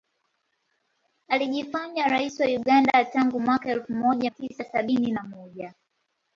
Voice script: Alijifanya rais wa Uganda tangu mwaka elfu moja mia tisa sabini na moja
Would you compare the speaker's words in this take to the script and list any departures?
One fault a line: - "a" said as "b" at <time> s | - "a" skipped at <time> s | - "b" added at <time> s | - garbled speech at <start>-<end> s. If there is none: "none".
- "mia" skipped at 4.3 s